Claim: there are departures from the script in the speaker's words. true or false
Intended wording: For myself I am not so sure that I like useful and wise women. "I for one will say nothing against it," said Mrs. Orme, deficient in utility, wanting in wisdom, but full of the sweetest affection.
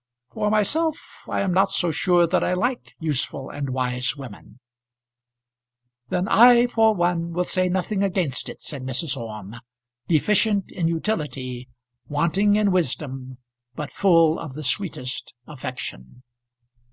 true